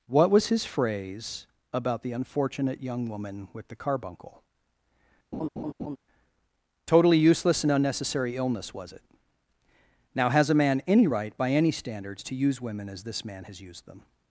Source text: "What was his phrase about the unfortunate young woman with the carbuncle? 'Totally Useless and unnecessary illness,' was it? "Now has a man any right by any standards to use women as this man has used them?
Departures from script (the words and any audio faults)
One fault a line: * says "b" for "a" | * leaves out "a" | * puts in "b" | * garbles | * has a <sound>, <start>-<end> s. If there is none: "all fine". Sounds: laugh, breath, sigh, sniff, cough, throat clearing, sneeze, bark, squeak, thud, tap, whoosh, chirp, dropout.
* has a laugh, 5.3-6.0 s